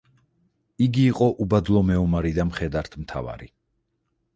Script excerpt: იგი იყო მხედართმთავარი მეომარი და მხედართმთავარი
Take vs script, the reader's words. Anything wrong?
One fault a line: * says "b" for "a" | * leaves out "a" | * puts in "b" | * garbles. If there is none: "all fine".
* says "უბადლო" for "მხედართმთავარი"